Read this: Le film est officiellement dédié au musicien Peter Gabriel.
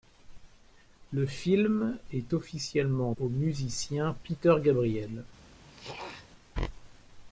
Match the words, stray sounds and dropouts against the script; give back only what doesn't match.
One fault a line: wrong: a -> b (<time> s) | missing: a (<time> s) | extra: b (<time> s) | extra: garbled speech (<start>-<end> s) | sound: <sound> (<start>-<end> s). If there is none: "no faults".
missing: dédié (3.1 s)
sound: throat clearing (5.6-6.3 s)